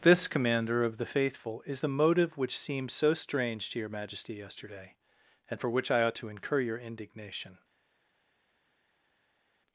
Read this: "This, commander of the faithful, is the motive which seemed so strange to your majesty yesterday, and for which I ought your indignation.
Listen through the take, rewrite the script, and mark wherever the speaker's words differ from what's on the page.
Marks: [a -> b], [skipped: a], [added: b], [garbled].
"This, commander of the faithful, is the motive which seemed so strange to your majesty yesterday, and for which I ought [added: to incur] your indignation.